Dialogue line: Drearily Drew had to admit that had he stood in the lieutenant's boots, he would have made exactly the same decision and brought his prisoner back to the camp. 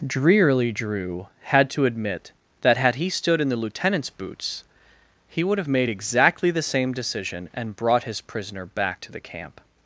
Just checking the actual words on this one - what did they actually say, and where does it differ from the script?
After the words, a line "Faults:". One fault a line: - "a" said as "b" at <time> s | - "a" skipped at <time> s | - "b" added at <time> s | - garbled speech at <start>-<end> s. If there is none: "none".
Drearily Drew had to admit that had he stood in the lieutenant's boots, he would have made exactly the same decision and brought his prisoner back to the camp.
Faults:
none